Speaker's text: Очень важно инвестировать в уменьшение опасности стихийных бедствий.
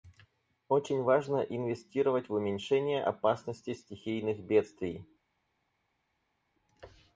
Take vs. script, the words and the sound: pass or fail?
pass